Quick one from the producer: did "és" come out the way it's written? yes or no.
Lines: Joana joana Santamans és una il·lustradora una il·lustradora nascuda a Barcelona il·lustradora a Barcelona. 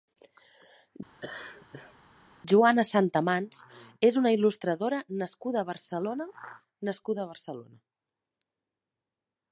yes